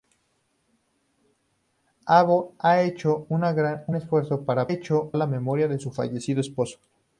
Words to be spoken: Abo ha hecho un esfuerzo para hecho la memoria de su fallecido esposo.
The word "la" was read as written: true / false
true